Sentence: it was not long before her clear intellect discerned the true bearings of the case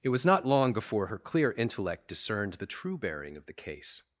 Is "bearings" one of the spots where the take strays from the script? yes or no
yes